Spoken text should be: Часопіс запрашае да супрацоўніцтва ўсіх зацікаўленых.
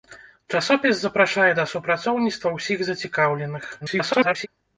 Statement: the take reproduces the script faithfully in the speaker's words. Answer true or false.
false